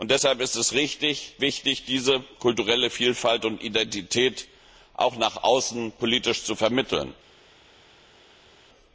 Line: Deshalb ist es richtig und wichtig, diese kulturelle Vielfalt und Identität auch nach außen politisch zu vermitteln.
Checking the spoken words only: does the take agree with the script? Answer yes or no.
no